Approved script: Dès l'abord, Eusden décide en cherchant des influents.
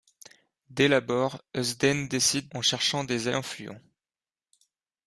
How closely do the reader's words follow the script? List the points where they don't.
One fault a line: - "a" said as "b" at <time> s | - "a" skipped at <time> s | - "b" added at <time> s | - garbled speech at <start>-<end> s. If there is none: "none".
none